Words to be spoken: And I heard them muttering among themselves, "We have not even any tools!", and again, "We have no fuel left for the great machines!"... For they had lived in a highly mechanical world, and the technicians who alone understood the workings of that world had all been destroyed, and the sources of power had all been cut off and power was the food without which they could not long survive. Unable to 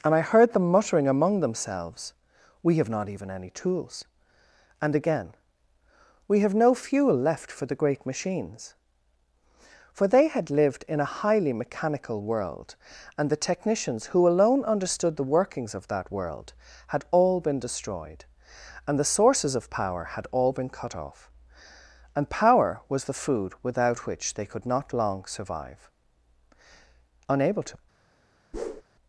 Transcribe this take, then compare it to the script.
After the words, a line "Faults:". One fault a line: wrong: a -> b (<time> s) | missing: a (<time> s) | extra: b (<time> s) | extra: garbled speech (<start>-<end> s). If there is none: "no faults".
And I heard them muttering among themselves, "We have not even any tools!", and again, "We have no fuel left for the great machines!"... For they had lived in a highly mechanical world, and the technicians who alone understood the workings of that world had all been destroyed, and the sources of power had all been cut off and power was the food without which they could not long survive. Unable to
Faults:
no faults